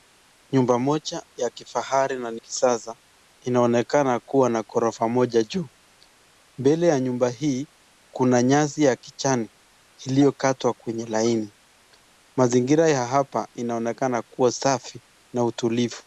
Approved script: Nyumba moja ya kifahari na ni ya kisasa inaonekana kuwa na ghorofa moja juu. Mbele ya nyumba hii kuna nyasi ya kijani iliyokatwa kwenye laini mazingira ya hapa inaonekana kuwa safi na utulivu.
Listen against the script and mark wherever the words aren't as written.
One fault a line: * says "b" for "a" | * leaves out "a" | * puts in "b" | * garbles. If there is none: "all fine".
* leaves out "ya"